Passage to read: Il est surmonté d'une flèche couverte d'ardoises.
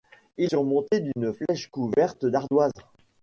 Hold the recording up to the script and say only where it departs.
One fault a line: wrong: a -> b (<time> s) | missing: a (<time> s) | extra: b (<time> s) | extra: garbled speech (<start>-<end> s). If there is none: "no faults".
missing: est (0.5 s)